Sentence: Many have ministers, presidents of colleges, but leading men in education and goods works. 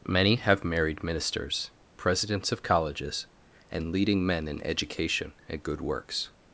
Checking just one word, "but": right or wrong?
wrong